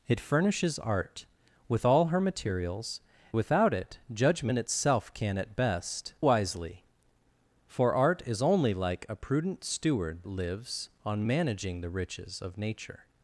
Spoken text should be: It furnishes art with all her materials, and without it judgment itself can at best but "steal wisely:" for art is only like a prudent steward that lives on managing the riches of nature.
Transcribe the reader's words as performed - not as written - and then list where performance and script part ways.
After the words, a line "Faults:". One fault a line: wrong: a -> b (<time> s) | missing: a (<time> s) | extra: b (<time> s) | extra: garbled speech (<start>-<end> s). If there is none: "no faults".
It furnishes art with all her materials, without it judgment itself can at best wisely:" for art is only like a prudent steward lives on managing the riches of nature.
Faults:
missing: and (3.0 s)
missing: but steal (6.1 s)
missing: that (10.2 s)